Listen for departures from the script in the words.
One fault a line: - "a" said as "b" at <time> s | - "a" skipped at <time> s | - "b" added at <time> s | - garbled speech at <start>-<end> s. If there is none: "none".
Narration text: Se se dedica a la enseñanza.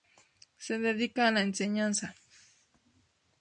- "se" skipped at 0.8 s